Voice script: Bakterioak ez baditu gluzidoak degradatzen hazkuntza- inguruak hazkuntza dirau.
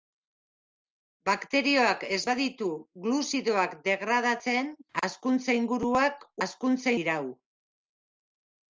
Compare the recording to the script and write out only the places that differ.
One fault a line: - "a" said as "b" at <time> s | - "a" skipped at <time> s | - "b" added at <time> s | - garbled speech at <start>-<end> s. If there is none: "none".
none